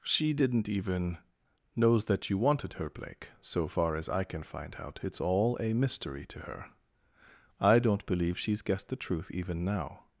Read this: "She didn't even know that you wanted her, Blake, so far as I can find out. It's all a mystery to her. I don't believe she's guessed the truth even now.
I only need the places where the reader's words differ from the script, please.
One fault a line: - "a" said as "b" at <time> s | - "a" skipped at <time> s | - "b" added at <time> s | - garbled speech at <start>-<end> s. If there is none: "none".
- "know" said as "knows" at 1.8 s